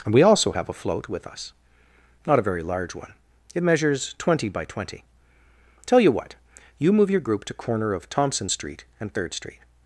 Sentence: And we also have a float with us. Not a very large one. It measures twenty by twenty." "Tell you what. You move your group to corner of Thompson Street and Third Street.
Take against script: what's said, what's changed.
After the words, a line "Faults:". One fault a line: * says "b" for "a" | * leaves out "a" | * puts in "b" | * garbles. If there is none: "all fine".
And we also have a float with us. Not a very large one. It measures twenty by twenty." "Tell you what. You move your group to corner of Thompson Street and Third Street.
Faults:
all fine